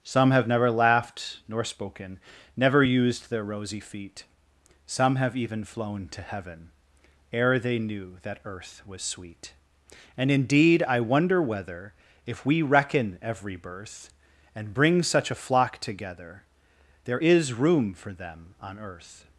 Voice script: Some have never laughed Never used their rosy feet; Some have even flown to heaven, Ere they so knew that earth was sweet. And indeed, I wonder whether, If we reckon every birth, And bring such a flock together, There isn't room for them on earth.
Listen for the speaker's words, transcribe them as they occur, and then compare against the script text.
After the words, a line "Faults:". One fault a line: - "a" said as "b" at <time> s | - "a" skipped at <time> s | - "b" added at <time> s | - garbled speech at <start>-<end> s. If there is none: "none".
Some have never laughed nor spoken, Never used their rosy feet; Some have even flown to heaven, Ere they knew that earth was sweet. And indeed, I wonder whether, If we reckon every birth, And bring such a flock together, There is room for them on earth.
Faults:
- "nor spoken" added at 1.5 s
- "so" skipped at 7.8 s
- "isn't" said as "is" at 17.2 s